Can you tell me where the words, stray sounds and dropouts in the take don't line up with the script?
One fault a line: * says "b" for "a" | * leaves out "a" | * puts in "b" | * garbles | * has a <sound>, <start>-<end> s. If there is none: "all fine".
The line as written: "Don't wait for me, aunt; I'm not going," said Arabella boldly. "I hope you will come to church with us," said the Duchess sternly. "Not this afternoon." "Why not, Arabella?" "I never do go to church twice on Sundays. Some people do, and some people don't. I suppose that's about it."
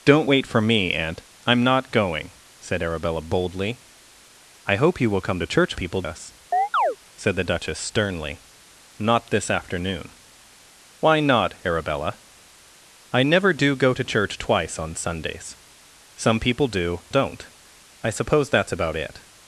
* says "people" for "with"
* has a chirp, 6.5-7.0 s
* leaves out "and some people"